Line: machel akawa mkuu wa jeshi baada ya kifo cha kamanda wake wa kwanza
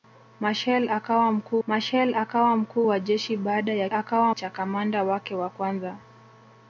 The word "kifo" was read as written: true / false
false